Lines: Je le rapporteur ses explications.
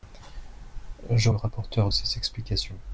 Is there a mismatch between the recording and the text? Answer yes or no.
no